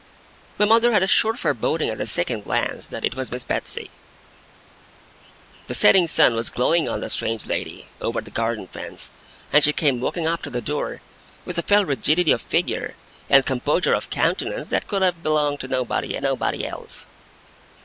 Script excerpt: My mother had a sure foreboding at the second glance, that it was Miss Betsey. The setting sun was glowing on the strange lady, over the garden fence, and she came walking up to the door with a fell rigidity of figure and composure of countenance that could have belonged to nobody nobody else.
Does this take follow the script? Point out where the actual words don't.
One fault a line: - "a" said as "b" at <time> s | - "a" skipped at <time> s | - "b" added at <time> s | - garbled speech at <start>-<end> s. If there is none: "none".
none